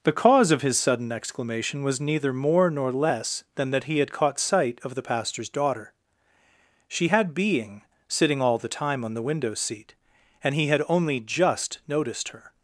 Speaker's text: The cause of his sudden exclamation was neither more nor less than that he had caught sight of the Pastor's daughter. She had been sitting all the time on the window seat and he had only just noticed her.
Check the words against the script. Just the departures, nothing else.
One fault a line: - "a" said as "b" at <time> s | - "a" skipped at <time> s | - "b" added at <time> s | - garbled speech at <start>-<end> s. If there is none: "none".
- "been" said as "being" at 7.3 s